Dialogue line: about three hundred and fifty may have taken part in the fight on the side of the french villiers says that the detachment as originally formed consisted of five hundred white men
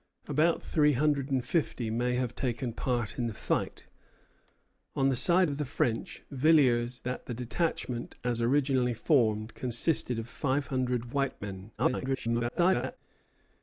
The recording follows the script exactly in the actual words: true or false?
false